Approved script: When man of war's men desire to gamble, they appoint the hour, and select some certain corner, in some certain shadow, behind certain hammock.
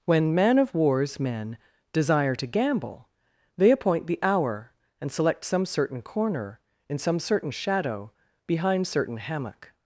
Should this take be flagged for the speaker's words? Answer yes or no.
no